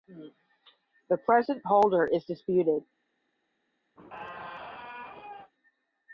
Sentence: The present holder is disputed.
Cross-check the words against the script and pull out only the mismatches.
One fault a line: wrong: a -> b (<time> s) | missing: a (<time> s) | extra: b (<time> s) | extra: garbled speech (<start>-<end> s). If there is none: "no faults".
no faults